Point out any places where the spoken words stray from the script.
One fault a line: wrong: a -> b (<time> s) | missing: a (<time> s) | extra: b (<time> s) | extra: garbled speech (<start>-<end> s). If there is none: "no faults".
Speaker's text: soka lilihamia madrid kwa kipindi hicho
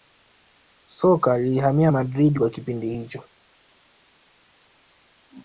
no faults